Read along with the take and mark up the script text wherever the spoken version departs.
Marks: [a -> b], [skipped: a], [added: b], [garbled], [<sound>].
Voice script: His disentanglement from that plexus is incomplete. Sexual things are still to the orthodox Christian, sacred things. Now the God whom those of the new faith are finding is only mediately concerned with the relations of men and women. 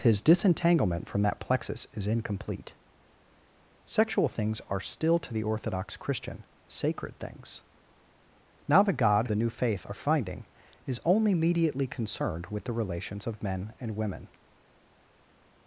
His disentanglement from that plexus is incomplete. Sexual things are still to the orthodox Christian, sacred things. Now the God [skipped: whom those of] the new faith are finding is only mediately concerned with the relations of men and women.